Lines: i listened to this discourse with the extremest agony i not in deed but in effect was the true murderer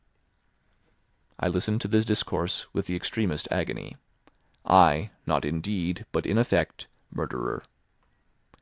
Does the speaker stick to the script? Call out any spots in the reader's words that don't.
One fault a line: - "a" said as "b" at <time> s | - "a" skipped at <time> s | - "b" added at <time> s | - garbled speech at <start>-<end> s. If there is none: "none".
- "was the true" skipped at 6.9 s